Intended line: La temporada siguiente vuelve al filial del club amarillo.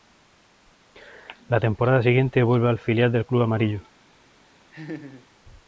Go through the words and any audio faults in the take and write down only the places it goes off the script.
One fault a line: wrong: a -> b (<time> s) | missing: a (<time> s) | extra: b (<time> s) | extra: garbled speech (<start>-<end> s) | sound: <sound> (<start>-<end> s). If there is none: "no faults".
sound: laugh (4.7-5.3 s)